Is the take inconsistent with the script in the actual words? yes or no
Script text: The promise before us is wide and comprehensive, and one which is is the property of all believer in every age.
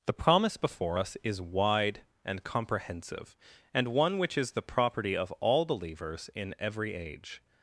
yes